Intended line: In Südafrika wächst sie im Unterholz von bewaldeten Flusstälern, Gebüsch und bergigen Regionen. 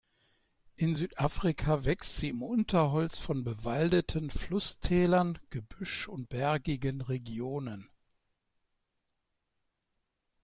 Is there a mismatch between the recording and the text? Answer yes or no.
no